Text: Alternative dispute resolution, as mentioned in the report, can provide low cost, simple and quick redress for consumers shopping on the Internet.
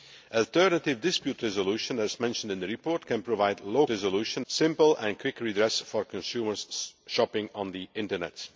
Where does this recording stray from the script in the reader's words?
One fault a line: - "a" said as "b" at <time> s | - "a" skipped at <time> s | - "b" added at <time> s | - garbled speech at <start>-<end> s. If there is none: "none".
- "cost" said as "resolution" at 3.9 s